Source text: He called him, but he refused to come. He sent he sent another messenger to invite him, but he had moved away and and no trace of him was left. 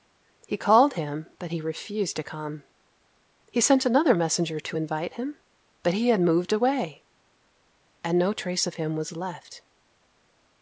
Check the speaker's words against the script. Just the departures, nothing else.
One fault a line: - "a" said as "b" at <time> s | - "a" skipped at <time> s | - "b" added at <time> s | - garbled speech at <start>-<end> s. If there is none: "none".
- "he sent" skipped at 3.9 s
- "and" skipped at 8.2 s